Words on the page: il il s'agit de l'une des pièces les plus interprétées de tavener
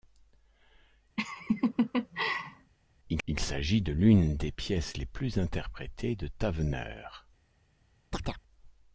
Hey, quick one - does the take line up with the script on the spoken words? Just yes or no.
yes